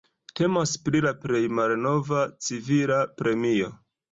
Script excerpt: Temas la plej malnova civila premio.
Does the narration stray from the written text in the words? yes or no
yes